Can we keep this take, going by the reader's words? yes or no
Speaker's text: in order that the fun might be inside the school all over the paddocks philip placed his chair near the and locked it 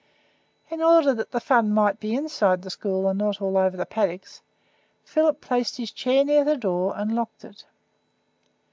no